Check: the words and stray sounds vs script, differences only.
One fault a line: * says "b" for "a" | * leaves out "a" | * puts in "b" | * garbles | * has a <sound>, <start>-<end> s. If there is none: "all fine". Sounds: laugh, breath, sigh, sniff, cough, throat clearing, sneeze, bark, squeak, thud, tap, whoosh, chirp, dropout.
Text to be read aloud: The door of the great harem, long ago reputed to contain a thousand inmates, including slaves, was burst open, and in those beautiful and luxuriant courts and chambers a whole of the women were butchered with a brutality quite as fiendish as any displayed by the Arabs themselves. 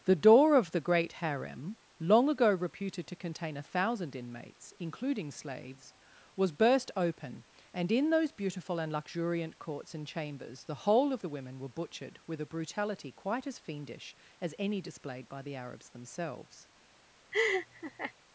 * says "the" for "a"
* has a laugh, 17.3-18.1 s